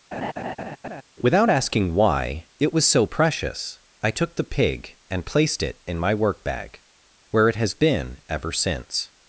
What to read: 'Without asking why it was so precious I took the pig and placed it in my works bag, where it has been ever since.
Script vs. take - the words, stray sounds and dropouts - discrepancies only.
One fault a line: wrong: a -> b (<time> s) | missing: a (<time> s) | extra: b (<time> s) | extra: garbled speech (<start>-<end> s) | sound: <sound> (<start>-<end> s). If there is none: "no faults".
sound: laugh (0.1-1.0 s)
wrong: works -> work (6.1 s)